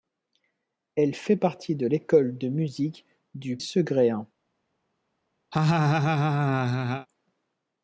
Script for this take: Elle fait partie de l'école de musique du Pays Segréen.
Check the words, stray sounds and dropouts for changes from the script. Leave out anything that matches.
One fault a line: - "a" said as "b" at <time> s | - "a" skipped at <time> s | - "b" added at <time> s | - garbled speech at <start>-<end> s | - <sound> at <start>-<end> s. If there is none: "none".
- "Pays" skipped at 3.6 s
- laugh at 5.5-7.1 s